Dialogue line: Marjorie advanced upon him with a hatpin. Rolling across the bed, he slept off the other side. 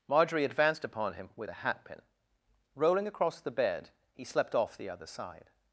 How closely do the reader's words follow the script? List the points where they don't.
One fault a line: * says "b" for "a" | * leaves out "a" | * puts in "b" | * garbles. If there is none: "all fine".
all fine